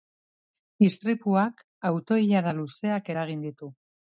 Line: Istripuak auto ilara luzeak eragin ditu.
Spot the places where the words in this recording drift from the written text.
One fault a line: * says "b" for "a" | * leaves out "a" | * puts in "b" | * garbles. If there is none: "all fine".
all fine